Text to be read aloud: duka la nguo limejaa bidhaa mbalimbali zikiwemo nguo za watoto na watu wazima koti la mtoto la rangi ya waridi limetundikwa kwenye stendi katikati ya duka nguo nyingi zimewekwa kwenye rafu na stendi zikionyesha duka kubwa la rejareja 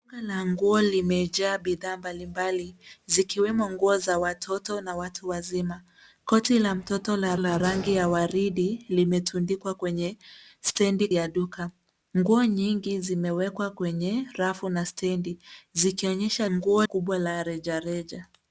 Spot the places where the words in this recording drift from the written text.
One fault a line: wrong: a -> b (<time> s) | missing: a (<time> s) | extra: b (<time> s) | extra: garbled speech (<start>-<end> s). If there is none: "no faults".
extra: la (7.4 s)
missing: katikati (11.1 s)
wrong: duka -> nguo (16.5 s)